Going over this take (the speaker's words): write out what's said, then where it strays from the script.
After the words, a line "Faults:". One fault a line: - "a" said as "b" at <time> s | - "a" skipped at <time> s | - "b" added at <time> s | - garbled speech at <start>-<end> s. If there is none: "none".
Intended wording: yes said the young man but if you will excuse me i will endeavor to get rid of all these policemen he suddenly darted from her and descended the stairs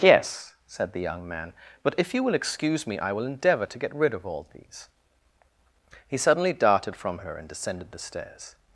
yes said the young man but if you will excuse me i will endeavor to get rid of all these he suddenly darted from her and descended the stairs
Faults:
- "policemen" skipped at 4.9 s